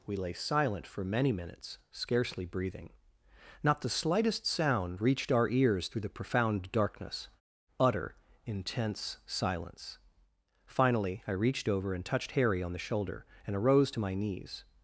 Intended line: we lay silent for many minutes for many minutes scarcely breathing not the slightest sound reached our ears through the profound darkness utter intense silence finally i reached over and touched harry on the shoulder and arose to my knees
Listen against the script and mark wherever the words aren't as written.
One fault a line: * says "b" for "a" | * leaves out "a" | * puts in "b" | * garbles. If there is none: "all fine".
* leaves out "for many minutes"